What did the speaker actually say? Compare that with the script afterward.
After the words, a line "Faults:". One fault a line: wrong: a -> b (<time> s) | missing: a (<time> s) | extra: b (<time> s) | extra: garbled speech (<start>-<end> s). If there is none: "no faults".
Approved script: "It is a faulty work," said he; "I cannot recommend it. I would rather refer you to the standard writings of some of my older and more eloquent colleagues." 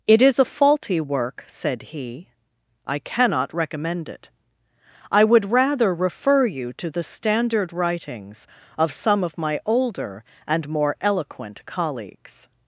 "It is a faulty work," said he; "I cannot recommend it. I would rather refer you to the standard writings of some of my older and more eloquent colleagues."
Faults:
no faults